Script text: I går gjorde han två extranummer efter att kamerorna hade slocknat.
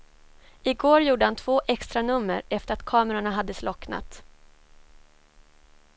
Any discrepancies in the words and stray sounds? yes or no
no